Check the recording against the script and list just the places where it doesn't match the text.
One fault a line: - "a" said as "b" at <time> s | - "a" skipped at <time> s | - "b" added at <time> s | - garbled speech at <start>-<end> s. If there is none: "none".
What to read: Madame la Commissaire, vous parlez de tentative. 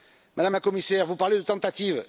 none